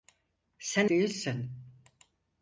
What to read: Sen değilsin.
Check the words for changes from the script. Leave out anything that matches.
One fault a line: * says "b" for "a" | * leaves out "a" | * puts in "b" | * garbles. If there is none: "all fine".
all fine